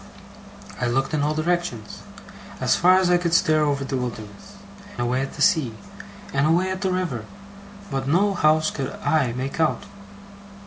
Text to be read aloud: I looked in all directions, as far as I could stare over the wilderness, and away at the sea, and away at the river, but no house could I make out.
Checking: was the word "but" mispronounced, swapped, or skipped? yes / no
no